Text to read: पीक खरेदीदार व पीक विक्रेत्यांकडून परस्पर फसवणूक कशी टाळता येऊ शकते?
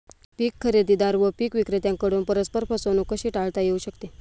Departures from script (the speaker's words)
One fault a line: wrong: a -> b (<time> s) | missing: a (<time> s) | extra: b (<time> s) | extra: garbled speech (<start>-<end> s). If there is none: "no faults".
no faults